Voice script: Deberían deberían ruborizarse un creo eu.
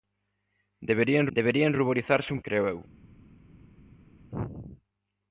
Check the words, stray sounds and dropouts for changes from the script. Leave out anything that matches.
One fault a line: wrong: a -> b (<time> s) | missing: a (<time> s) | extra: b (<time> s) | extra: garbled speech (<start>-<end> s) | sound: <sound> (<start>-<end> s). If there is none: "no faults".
no faults